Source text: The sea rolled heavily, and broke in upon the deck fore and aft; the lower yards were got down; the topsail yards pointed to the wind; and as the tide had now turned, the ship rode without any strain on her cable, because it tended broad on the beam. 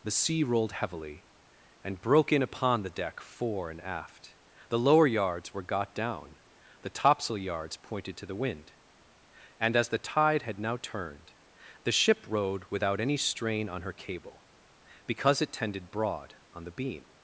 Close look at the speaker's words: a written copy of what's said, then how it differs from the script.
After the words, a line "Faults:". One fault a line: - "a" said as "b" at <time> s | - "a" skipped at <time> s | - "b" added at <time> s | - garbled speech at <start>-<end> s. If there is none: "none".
The sea rolled heavily, and broke in upon the deck fore and aft; the lower yards were got down; the topsail yards pointed to the wind; and as the tide had now turned, the ship rode without any strain on her cable, because it tended broad on the beam.
Faults:
none